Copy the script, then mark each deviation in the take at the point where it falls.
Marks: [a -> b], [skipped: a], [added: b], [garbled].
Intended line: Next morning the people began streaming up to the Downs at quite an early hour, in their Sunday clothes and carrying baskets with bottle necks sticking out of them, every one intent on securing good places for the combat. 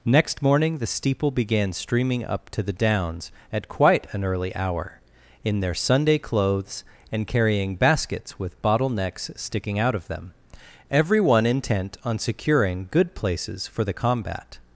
Next morning the [people -> steeple] began streaming up to the Downs at quite an early hour, in their Sunday clothes and carrying baskets with bottle necks sticking out of them, every one intent on securing good places for the combat.